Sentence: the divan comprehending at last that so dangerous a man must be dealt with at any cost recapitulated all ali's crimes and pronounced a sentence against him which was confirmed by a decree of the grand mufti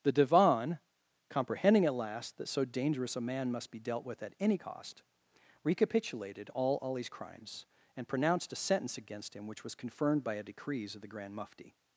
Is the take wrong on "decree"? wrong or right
wrong